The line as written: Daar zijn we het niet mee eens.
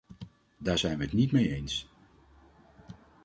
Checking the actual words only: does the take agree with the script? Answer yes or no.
yes